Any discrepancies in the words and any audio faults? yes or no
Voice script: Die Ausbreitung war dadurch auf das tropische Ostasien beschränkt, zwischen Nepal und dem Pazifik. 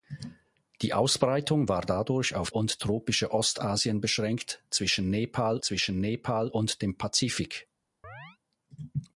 yes